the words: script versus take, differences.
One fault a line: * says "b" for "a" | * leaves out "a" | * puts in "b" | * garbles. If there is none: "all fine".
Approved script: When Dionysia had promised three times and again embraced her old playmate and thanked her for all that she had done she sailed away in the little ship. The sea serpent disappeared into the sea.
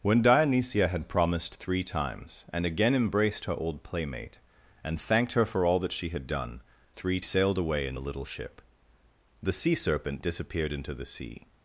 * says "three" for "she"